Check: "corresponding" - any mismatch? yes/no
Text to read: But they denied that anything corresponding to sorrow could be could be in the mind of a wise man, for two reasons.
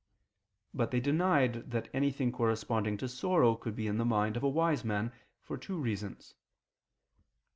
no